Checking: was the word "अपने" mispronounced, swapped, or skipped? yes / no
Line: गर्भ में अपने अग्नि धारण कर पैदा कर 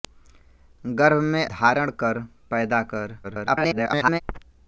yes